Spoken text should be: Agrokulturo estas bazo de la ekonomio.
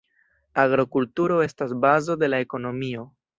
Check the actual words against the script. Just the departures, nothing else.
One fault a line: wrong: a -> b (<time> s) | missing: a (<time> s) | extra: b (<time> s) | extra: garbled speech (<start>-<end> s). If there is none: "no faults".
no faults